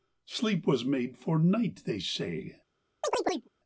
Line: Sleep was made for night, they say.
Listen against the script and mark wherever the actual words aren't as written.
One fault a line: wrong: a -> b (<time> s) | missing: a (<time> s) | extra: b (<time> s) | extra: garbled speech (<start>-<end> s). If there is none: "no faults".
no faults